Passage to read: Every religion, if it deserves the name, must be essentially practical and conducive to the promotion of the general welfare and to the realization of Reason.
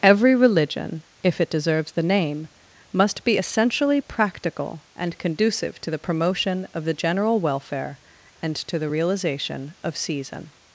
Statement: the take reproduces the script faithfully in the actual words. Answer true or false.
false